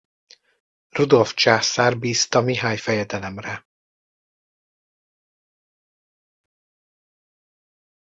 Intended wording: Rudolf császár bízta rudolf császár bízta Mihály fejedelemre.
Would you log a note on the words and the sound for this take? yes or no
yes